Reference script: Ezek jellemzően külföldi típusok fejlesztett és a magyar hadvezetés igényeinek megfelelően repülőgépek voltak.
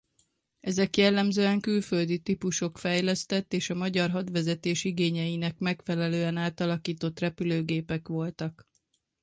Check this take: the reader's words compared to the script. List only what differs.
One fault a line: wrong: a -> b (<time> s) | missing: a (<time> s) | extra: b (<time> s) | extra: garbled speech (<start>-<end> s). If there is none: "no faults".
extra: átalakított (6.4 s)